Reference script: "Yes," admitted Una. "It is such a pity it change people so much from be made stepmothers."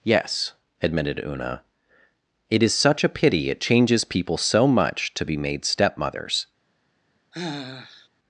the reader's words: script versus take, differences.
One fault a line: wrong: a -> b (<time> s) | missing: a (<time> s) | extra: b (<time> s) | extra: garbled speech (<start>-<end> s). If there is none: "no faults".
wrong: change -> changes (3.6 s)
wrong: from -> to (5.1 s)